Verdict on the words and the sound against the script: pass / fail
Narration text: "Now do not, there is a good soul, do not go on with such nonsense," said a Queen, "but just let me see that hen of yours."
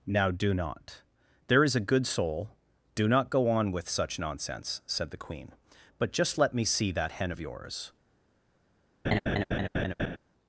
fail